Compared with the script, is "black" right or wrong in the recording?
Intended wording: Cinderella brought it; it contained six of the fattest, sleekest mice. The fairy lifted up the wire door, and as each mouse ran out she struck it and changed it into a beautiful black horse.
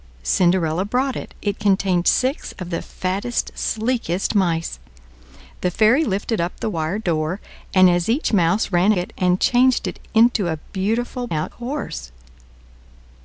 wrong